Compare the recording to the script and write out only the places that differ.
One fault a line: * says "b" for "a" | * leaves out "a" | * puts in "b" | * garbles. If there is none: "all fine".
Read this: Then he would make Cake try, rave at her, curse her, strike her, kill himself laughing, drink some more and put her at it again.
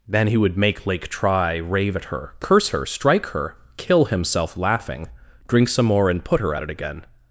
* says "Lake" for "Cake"